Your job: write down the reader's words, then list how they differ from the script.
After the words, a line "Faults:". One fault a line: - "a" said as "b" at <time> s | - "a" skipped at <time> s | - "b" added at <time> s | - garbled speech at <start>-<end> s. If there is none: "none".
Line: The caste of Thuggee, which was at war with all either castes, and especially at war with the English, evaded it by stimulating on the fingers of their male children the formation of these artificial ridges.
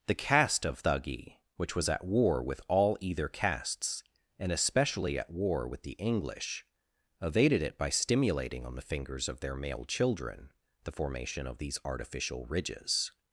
The caste of Thuggee, which was at war with all either castes, and especially at war with the English, evaded it by stimulating on the fingers of their male children the formation of these artificial ridges.
Faults:
none